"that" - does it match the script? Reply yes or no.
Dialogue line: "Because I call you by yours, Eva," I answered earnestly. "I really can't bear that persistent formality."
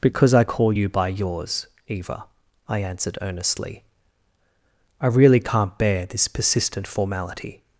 no